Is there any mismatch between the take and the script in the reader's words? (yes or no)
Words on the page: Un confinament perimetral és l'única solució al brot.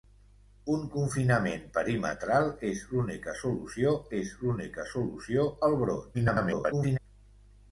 yes